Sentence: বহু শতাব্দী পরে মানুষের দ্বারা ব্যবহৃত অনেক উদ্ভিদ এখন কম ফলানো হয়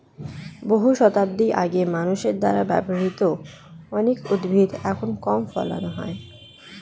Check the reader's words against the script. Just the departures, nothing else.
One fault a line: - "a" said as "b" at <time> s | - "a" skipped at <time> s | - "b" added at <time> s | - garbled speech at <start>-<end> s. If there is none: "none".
- "পরে" said as "আগে" at 1.6 s